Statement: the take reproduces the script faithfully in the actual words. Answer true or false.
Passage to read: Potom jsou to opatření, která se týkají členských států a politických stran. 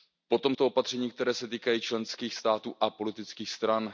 false